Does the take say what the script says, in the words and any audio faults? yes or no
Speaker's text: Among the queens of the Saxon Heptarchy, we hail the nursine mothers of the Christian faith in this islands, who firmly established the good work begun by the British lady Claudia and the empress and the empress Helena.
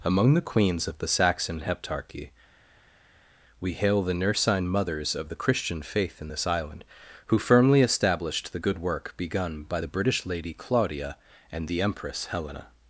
no